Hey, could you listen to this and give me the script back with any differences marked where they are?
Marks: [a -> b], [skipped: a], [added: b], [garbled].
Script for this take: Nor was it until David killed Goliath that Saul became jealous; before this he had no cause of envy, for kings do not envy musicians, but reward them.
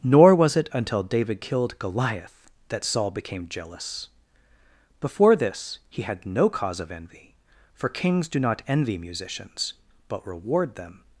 Nor was it until David killed Goliath that Saul became jealous; before this he had no cause of envy, for kings do not envy musicians, but reward them.